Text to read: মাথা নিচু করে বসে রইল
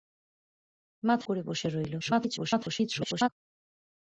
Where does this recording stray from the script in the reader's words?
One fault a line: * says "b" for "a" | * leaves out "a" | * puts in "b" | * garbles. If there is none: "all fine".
* leaves out "নিচু"
* garbles